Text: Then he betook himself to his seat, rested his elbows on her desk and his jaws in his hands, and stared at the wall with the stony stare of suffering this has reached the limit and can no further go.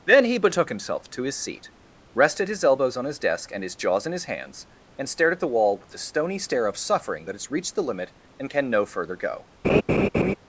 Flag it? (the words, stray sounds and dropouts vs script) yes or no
yes